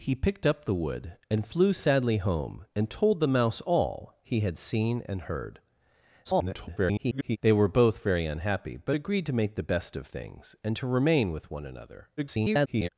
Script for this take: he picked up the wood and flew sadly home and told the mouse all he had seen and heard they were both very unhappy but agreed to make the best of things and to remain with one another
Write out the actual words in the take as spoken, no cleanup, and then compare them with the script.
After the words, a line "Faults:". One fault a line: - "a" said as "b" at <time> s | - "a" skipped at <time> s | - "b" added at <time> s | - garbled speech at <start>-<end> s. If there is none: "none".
he picked up the wood and flew sadly home and told the mouse all he had seen and heard [garbled] they were both very unhappy but agreed to make the best of things and to remain with one another [garbled]
Faults:
- garbled speech at 6.2-7.4 s
- garbled speech at 12.2-12.9 s